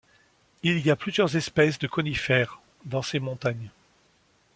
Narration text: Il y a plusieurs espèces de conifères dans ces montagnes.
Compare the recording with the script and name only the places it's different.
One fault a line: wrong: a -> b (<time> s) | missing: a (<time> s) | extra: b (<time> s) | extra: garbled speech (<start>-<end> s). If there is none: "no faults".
no faults